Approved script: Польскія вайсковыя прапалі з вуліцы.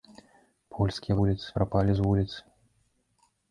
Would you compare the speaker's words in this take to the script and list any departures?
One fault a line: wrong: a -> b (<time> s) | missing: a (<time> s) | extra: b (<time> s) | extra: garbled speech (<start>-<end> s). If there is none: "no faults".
wrong: вайсковыя -> вуліцы (1.2 s)